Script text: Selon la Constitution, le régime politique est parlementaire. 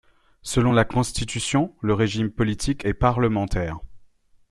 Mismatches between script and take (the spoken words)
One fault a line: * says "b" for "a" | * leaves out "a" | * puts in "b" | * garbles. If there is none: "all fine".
all fine